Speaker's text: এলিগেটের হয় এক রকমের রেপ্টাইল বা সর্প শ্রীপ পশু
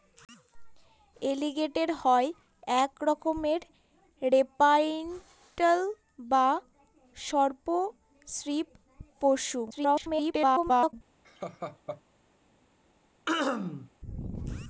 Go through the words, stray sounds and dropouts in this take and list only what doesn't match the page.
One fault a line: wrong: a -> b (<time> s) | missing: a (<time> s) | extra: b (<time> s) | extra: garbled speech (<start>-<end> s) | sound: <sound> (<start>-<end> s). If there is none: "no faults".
extra: garbled speech (9.7-10.9 s)
sound: laugh (11.2-12.0 s)
sound: throat clearing (13.3-13.9 s)